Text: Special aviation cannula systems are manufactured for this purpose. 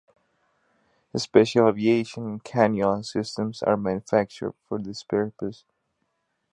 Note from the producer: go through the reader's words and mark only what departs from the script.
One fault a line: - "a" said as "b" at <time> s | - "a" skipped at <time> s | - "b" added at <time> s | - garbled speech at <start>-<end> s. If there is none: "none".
none